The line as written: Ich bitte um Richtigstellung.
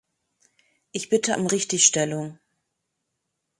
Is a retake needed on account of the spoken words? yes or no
no